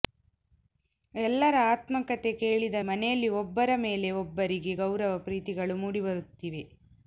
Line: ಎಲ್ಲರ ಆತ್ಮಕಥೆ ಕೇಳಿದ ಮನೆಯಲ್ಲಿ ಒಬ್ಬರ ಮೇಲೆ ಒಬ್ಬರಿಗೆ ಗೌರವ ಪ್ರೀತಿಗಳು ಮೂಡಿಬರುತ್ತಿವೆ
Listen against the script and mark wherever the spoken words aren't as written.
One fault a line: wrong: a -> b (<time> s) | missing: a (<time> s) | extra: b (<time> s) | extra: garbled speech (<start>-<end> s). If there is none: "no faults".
no faults